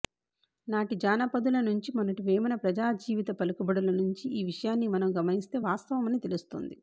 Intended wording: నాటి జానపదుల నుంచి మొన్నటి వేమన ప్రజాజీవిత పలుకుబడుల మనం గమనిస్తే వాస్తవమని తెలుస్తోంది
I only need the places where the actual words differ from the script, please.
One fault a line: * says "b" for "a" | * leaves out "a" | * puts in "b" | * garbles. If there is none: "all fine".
* puts in "నుంచి ఈ విషయాన్ని"